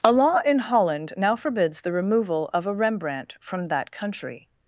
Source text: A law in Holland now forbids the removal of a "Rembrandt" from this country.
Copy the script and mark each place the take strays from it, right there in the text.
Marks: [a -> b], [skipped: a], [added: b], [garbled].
A law in Holland now forbids the removal of a "Rembrandt" from [this -> that] country.